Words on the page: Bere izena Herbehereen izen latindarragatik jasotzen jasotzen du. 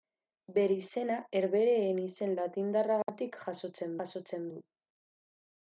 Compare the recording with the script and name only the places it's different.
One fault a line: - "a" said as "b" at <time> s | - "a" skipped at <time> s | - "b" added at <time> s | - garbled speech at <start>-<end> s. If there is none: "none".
none